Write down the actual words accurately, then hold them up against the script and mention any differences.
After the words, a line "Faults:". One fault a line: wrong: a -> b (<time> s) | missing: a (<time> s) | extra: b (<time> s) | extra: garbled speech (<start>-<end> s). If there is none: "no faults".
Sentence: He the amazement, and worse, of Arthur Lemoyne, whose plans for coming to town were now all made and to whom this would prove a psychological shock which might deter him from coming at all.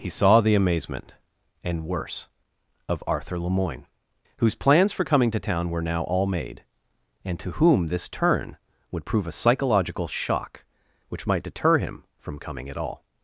He saw the amazement, and worse, of Arthur Lemoyne, whose plans for coming to town were now all made and to whom this turn would prove a psychological shock which might deter him from coming at all.
Faults:
extra: saw (0.1 s)
extra: turn (8.1 s)